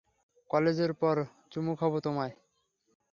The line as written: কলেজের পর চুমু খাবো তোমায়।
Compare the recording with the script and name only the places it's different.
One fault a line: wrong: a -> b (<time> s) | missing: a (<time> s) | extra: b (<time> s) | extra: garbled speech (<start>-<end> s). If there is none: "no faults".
no faults